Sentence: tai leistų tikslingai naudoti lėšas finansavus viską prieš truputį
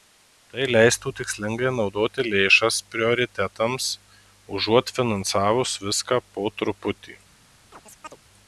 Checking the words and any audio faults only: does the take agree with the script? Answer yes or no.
no